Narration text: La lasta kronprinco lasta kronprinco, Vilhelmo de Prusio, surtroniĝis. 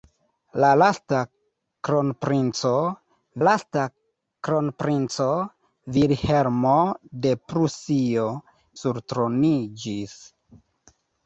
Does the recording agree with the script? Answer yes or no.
yes